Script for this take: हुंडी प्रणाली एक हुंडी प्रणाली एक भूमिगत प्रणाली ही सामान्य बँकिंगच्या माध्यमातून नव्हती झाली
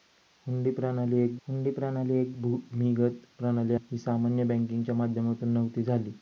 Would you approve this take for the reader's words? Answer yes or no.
yes